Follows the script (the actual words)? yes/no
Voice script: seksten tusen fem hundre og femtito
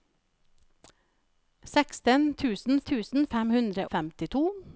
no